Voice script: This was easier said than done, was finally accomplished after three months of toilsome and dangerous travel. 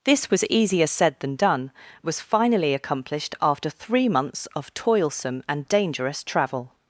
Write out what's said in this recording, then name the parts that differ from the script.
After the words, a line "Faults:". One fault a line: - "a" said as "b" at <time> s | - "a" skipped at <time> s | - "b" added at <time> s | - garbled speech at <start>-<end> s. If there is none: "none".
This was easier said than done, was finally accomplished after three months of toilsome and dangerous travel.
Faults:
none